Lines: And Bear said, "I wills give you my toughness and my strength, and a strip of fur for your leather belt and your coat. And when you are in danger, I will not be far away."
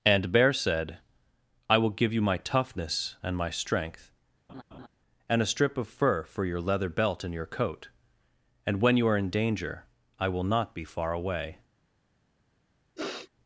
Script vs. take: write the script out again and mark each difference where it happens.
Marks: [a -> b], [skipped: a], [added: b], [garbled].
And Bear said, "I [wills -> will] give you my toughness and my strength, and a strip of fur for your leather belt and your coat. And when you are in danger, I will not be far away."